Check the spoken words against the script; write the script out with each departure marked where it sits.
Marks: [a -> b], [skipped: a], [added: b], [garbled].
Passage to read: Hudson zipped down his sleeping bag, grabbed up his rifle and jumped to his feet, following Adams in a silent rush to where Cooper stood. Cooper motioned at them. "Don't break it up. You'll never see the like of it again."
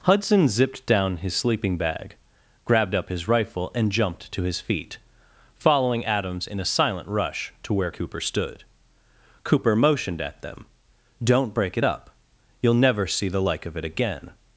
Hudson zipped down his sleeping bag, grabbed up his rifle and jumped to his feet, following Adams in a silent rush to where Cooper stood. Cooper motioned at them. "Don't break it up. You'll never see the like of it again."